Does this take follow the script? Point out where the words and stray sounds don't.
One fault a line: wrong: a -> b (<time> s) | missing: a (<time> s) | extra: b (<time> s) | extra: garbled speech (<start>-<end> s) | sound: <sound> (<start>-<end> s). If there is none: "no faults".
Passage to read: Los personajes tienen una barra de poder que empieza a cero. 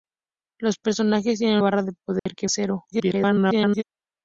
missing: una (1.6 s)
sound: dropout (2.2-2.3 s)
missing: empieza (2.5 s)
extra: garbled speech (2.9-3.8 s)